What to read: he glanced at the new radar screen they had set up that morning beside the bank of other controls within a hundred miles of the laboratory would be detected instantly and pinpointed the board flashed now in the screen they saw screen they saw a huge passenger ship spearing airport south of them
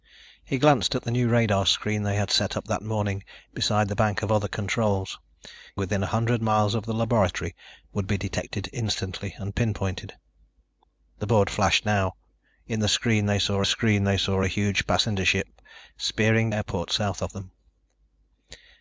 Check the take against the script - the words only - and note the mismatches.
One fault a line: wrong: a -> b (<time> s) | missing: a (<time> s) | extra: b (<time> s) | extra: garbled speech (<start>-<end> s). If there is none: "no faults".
no faults